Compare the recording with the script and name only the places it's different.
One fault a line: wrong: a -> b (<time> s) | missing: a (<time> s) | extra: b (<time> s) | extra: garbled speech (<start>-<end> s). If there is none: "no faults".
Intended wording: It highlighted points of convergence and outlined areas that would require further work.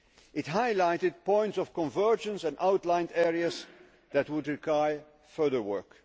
no faults